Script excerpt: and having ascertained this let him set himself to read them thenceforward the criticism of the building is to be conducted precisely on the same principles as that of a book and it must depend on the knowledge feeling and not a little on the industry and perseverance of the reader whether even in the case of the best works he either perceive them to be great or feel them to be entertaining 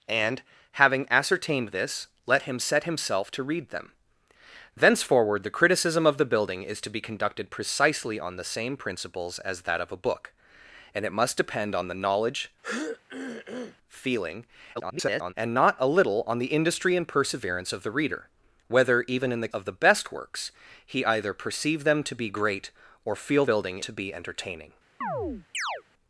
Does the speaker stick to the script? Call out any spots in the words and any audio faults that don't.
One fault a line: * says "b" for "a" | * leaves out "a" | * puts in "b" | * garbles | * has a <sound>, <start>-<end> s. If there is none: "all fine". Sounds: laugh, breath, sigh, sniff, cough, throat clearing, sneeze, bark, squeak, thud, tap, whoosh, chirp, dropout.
* has a throat clearing, 12.6-13.8 s
* garbles
* leaves out "case"
* says "building" for "them"
* has a chirp, 25.0-25.8 s